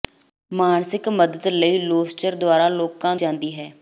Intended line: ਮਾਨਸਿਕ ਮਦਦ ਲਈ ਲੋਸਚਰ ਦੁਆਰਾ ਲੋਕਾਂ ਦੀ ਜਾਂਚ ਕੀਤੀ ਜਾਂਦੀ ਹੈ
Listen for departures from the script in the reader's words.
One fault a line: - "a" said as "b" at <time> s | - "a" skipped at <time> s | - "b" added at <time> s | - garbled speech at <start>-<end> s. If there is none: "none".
- "ਦੀ ਜਾਂਚ ਕੀਤੀ" skipped at 3.1 s